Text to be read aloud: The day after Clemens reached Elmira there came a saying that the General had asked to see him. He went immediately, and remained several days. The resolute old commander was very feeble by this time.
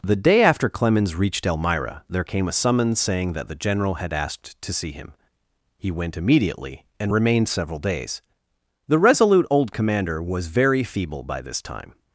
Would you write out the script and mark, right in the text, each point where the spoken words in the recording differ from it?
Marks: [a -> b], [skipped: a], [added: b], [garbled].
The day after Clemens reached Elmira there came a [added: summons] saying that the General had asked to see him. He went immediately, and remained several days. The resolute old commander was very feeble by this time.